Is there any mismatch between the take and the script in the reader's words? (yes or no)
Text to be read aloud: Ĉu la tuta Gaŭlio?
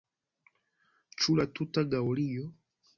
no